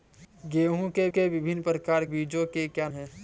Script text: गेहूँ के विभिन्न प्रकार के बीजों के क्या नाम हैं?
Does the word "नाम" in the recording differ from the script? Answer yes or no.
yes